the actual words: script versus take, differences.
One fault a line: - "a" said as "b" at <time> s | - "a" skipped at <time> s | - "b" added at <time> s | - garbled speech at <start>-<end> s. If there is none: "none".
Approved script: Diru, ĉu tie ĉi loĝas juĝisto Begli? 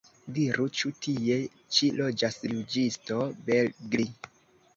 none